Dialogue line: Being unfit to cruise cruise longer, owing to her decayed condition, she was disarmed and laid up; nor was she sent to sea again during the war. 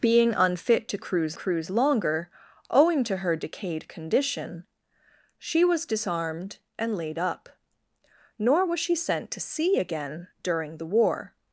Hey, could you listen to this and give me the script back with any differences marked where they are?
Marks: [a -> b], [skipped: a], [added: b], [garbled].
Being unfit to cruise cruise longer, owing to her decayed condition, she was disarmed and laid up; nor was she sent to sea again during the war.